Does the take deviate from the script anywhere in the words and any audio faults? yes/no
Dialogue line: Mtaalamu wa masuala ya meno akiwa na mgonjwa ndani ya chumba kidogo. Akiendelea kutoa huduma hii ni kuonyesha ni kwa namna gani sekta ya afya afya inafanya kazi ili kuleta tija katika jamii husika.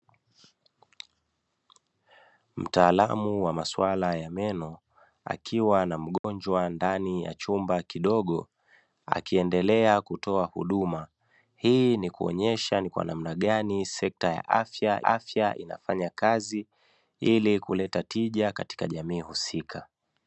yes